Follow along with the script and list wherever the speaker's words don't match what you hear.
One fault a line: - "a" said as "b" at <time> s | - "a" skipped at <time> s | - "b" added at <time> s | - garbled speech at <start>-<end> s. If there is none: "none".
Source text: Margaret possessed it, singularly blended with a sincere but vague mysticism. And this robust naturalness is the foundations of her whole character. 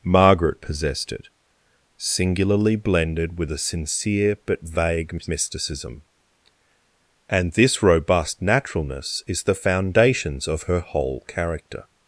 none